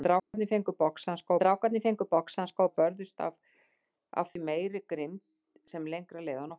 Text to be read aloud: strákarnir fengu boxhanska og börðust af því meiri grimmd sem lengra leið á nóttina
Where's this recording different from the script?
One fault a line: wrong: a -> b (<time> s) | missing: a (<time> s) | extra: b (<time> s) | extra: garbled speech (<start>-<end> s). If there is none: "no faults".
extra: strákarnir fengu boxhanska (1.4 s)